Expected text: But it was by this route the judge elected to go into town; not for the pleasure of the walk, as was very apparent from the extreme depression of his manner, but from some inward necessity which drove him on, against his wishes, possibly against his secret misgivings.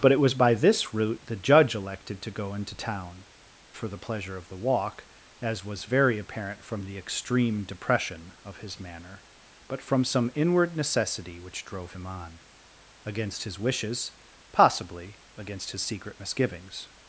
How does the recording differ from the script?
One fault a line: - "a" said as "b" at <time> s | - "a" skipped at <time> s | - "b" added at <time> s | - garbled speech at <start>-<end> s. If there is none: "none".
- "not" skipped at 3.2 s